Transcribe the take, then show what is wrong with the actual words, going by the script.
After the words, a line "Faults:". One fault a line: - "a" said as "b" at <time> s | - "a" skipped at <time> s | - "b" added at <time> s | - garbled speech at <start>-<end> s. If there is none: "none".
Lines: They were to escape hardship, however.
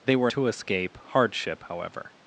They were to escape hardship, however.
Faults:
none